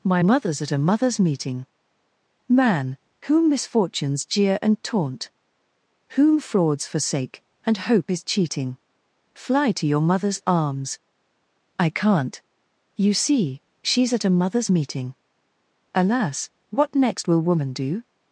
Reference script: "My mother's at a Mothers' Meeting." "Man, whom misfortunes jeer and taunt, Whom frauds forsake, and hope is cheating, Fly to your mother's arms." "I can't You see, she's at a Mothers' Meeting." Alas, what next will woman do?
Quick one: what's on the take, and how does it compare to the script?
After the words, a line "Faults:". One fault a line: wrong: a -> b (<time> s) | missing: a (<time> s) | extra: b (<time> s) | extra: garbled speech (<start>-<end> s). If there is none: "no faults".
"My mother's at a Mothers' Meeting." "Man, whom misfortunes jeer and taunt, Whom frauds forsake, and hope is cheating, Fly to your mother's arms." "I can't You see, she's at a Mothers' Meeting." Alas, what next will woman do?
Faults:
no faults